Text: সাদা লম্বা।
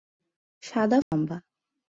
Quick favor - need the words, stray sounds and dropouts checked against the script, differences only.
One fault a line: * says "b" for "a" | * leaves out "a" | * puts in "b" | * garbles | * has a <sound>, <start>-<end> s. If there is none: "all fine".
* has a dropout, 1.0-1.1 s